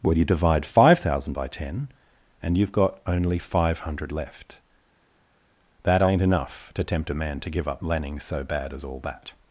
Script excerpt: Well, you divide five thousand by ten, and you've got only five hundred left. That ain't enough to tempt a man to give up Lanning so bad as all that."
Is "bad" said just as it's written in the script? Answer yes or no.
yes